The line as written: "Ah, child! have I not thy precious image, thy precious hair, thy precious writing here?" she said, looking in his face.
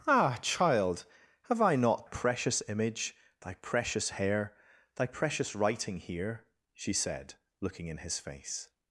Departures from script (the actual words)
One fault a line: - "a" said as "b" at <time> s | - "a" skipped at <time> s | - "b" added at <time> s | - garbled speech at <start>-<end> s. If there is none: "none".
- "thy" skipped at 2.1 s